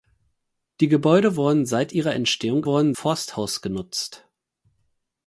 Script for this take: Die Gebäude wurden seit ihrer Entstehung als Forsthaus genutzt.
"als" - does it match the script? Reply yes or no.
no